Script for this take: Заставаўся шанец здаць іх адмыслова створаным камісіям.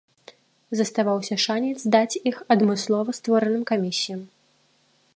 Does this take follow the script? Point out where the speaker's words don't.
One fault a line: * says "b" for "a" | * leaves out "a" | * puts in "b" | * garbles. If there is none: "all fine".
all fine